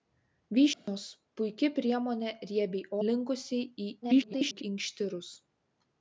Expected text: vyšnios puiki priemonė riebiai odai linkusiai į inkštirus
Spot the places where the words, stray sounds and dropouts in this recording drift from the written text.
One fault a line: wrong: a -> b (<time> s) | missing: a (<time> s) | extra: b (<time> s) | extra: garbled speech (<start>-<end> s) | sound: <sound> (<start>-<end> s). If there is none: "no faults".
sound: dropout (0.7-0.9 s)
missing: odai (2.9 s)
extra: garbled speech (4.0-4.6 s)